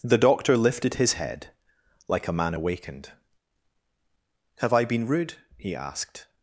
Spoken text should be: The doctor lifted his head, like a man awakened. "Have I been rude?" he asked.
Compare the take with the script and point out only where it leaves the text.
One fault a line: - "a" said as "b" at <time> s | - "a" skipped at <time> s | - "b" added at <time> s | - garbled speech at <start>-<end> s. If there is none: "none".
none